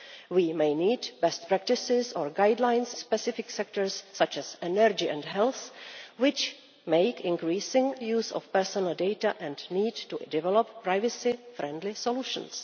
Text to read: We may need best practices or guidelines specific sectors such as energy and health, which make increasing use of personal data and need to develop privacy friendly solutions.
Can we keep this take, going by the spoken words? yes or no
yes